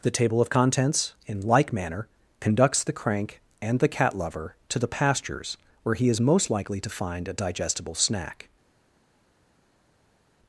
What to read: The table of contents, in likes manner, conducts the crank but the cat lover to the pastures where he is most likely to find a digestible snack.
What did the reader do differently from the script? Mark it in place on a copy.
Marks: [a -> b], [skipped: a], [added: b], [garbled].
The table of contents, in [likes -> like] manner, conducts the crank [but -> and] the cat lover to the pastures where he is most likely to find a digestible snack.